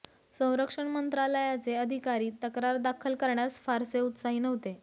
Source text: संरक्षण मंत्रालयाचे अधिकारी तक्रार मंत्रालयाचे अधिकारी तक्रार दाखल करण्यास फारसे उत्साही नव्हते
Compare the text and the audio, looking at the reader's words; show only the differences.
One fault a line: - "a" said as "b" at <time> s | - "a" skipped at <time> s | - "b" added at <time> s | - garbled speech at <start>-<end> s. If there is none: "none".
- "मंत्रालयाचे अधिकारी तक्रार" skipped at 2.8 s